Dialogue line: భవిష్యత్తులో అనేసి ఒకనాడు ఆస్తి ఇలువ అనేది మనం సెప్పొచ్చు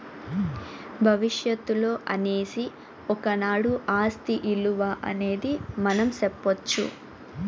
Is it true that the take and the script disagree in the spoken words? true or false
false